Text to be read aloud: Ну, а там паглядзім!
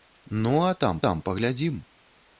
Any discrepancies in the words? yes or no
yes